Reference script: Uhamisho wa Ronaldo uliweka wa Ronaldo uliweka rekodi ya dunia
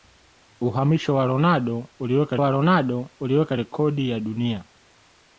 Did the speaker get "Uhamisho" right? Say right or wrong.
right